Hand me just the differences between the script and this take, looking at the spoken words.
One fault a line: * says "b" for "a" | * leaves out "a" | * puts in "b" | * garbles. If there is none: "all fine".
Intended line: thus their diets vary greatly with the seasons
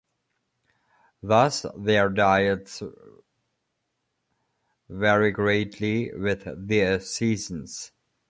all fine